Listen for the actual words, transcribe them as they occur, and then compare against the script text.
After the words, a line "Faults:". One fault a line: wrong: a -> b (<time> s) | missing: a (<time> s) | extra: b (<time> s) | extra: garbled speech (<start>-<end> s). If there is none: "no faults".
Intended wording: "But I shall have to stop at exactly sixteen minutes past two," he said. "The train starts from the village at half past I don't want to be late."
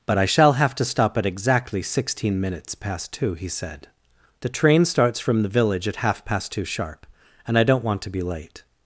"But I shall have to stop at exactly sixteen minutes past two," he said. "The train starts from the village at half past two sharp; and I don't want to be late."
Faults:
extra: two sharp and (6.5 s)